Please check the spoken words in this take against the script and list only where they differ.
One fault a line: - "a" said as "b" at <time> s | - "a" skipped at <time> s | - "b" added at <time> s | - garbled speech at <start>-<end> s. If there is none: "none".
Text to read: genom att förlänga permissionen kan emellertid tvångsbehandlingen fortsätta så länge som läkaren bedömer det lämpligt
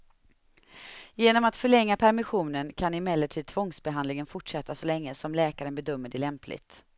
none